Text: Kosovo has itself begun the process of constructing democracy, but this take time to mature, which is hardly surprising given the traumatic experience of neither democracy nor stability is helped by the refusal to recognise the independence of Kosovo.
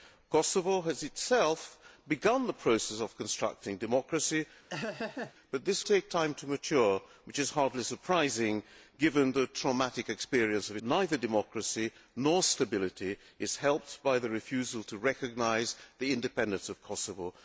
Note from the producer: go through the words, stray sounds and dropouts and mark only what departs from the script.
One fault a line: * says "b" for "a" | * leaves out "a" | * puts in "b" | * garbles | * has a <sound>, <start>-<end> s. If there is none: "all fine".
* has a laugh, 4.7-5.3 s